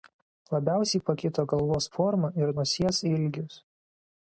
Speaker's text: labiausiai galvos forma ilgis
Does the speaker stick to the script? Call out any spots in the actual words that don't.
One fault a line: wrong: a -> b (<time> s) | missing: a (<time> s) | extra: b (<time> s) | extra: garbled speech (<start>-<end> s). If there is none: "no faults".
extra: pakito (1.1 s)
extra: ir nosies (2.4 s)